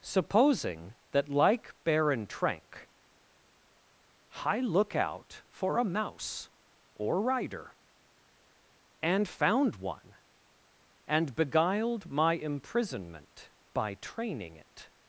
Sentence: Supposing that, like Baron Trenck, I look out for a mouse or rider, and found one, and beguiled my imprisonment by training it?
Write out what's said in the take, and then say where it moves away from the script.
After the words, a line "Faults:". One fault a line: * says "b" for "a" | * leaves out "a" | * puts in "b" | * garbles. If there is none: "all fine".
Supposing that, like Baron Trenck, I look out for a mouse or rider, and found one, and beguiled my imprisonment by training it?
Faults:
all fine